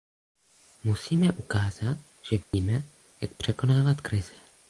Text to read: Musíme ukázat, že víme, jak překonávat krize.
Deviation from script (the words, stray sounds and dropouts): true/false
true